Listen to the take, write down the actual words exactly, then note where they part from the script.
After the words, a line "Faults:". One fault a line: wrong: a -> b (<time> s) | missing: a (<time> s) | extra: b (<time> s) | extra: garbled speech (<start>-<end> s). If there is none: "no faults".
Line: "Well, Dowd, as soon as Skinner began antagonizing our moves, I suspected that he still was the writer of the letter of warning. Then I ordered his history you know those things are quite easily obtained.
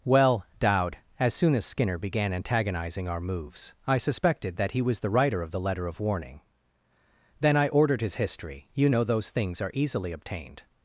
"Well, Dowd, as soon as Skinner began antagonizing our moves, I suspected that he was the writer of the letter of warning. Then I ordered his history you know those things are easily obtained.
Faults:
missing: still (4.8 s)
missing: quite (9.7 s)